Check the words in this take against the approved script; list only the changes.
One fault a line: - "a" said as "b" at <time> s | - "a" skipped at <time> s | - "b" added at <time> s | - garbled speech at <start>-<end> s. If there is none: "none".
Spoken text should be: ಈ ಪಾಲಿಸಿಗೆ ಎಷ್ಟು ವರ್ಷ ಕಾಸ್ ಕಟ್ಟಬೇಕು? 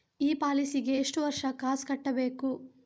none